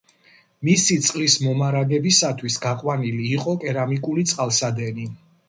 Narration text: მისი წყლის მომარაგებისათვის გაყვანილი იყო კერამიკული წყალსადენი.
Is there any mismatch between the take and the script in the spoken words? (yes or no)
no